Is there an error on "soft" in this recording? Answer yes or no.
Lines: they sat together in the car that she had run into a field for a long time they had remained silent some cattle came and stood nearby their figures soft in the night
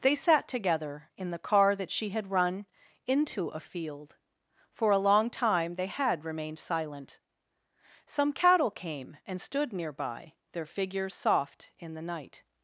no